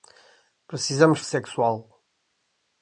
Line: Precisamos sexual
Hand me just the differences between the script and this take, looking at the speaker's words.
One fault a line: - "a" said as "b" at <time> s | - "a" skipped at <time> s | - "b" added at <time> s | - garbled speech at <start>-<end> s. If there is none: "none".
none